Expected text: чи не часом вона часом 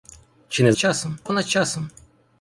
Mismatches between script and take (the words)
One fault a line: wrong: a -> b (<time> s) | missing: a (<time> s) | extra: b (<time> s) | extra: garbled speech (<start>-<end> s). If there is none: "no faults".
no faults